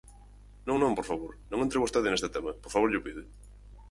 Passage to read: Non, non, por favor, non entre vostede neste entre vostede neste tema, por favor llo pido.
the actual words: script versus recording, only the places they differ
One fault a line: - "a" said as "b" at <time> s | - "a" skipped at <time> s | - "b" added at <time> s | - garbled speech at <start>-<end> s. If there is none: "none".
- "entre vostede neste" skipped at 2.3 s